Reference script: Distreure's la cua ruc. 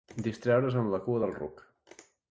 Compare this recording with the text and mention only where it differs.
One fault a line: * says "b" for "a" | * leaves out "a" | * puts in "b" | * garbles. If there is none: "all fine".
* puts in "amb"
* puts in "del"